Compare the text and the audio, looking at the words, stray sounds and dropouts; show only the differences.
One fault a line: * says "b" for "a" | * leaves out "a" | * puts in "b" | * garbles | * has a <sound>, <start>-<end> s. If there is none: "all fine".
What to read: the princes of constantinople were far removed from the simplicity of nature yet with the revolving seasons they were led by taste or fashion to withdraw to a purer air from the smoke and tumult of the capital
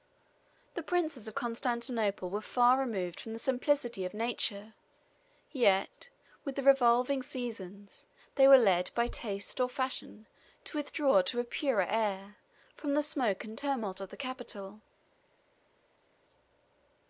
all fine